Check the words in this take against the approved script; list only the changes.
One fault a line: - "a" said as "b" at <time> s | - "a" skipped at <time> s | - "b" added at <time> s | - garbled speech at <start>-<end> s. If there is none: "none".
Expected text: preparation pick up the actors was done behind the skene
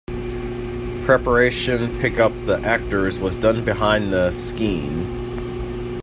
none